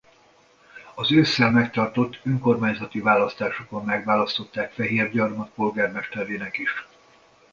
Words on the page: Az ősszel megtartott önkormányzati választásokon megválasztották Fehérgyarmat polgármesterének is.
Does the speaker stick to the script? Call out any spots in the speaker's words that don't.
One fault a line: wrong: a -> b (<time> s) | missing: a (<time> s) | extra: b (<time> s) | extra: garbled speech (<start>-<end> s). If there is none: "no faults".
no faults